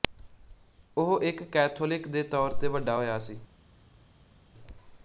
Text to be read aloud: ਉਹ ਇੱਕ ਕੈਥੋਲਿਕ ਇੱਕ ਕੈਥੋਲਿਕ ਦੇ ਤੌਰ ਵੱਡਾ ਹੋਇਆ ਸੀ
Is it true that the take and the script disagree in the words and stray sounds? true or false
true